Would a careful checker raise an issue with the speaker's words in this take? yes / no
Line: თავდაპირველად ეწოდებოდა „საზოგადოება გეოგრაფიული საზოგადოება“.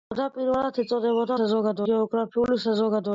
no